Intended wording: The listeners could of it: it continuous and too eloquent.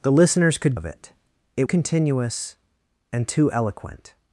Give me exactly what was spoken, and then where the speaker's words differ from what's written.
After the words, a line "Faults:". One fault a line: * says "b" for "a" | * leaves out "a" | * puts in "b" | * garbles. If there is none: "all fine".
The listeners could of it: it continuous and too eloquent.
Faults:
all fine